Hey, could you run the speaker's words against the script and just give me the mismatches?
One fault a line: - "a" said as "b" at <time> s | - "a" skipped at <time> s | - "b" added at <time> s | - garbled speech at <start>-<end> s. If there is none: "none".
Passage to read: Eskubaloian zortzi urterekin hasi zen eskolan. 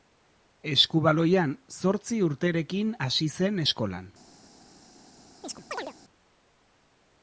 none